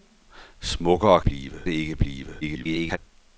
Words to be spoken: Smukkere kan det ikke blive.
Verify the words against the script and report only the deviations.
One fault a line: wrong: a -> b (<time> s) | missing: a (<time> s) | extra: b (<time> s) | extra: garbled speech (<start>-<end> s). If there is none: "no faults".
wrong: kan -> blive (1.2 s)
extra: garbled speech (2.4-3.0 s)